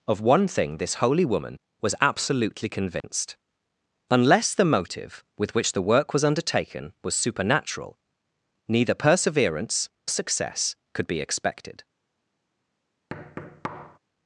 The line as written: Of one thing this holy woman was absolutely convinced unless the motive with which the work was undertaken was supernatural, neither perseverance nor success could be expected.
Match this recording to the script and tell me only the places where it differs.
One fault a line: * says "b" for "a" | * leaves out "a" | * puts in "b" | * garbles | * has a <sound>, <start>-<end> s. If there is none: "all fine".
* has a dropout, 3.0-3.0 s
* leaves out "nor"
* has a thud, 13.1-14.0 s